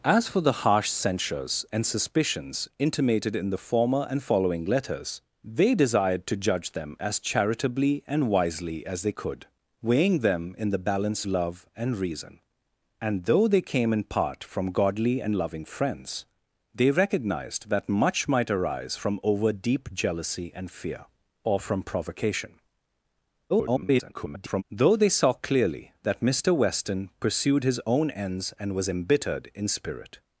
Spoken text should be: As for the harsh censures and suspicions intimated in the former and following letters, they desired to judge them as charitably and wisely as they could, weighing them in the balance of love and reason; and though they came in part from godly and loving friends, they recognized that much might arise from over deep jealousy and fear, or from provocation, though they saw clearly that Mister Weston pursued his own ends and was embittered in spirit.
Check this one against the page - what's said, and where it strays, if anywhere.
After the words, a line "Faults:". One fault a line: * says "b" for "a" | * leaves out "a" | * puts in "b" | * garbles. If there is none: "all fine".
As for the harsh censures and suspicions intimated in the former and following letters, they desired to judge them as charitably and wisely as they could, weighing them in the balance love and reason; and though they came in part from godly and loving friends, they recognized that much might arise from over deep jealousy and fear, or from provocation, [garbled] though they saw clearly that Mister Weston pursued his own ends and was embittered in spirit.
Faults:
* leaves out "of"
* garbles